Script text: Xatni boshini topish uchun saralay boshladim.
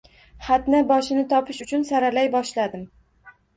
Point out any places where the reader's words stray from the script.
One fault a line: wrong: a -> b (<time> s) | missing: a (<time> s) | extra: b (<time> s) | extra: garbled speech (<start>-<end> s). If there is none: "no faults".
no faults